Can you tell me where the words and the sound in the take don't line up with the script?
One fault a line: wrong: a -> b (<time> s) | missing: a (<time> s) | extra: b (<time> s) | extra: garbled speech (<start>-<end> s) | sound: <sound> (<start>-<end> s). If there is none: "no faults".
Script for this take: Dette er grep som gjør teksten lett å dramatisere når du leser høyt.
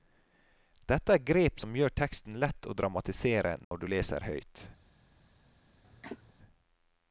sound: dropout (3.6-3.7 s)
sound: cough (5.8-6.3 s)